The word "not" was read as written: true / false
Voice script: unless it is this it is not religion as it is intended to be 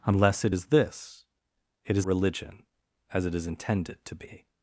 false